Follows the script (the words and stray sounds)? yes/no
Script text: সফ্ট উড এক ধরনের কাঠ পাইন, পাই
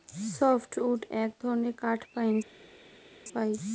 yes